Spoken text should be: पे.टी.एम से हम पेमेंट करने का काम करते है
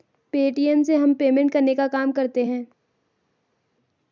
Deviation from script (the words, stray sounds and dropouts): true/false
false